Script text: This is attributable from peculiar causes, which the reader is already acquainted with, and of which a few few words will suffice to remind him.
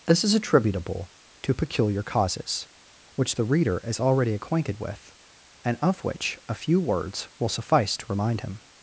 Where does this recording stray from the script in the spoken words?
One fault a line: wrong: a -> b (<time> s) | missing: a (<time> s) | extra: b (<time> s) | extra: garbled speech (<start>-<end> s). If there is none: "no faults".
wrong: from -> to (1.4 s)
missing: few (6.8 s)